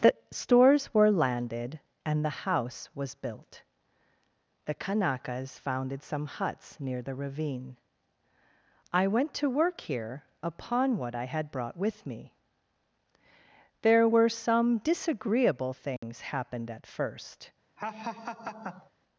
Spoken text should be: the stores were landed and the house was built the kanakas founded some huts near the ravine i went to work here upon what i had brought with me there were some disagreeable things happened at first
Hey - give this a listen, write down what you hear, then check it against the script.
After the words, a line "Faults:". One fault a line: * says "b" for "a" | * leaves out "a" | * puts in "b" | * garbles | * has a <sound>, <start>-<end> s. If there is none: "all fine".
the stores were landed and the house was built the kanakas founded some huts near the ravine i went to work here upon what i had brought with me there were some disagreeable things happened at first
Faults:
* has a dropout, 16.0-16.0 s
* has a laugh, 17.8-18.9 s